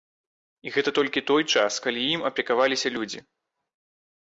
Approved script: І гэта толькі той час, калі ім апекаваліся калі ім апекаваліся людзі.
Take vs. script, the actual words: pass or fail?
fail